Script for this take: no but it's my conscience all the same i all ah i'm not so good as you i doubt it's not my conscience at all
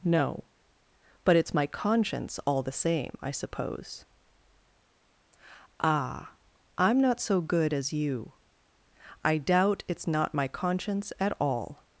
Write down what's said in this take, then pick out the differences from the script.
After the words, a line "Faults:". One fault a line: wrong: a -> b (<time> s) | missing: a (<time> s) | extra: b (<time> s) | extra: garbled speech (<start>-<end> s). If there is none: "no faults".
no but it's my conscience all the same i suppose ah i'm not so good as you i doubt it's not my conscience at all
Faults:
wrong: all -> suppose (3.3 s)